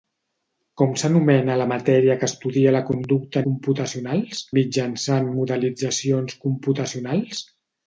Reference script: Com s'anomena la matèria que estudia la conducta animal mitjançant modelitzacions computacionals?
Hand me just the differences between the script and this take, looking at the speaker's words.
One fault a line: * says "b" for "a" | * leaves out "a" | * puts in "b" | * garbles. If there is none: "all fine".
* says "computacionals" for "animal"